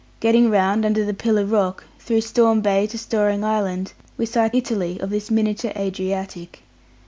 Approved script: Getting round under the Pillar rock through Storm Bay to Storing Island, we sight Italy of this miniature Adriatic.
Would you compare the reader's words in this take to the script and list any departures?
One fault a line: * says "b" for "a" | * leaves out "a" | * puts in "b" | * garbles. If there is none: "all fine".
all fine